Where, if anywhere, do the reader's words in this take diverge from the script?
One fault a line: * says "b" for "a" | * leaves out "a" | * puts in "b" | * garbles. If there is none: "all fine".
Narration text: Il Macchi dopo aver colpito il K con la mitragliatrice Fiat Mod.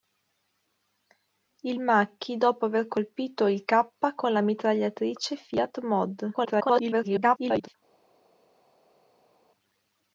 * garbles